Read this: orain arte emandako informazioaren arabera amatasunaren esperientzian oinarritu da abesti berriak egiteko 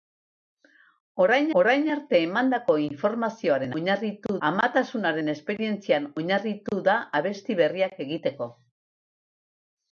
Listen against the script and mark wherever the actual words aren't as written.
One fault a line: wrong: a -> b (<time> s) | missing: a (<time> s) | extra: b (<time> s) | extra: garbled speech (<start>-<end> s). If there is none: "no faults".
extra: orain (1.6 s)
wrong: arabera -> oinarritu (3.8 s)